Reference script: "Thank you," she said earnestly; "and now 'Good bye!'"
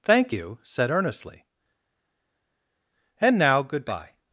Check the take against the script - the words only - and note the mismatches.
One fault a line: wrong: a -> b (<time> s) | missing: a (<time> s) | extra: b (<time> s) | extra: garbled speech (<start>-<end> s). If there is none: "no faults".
missing: she (0.6 s)